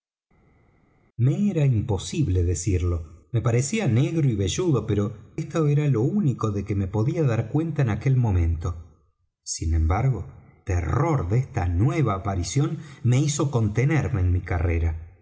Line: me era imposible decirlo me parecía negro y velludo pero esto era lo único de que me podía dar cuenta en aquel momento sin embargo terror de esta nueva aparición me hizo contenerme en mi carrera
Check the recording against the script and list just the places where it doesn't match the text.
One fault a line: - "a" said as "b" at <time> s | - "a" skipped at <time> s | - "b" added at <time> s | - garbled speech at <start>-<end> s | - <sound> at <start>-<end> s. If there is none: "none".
none